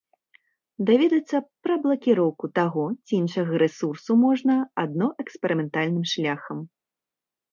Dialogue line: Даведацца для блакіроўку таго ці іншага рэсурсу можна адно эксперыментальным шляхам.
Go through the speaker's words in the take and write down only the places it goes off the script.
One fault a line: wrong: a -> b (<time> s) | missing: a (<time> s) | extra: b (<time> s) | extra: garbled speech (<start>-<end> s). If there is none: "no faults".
wrong: для -> пра (1.6 s)